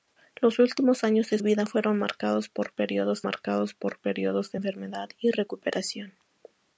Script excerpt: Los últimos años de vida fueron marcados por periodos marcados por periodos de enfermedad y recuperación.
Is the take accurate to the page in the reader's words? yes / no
yes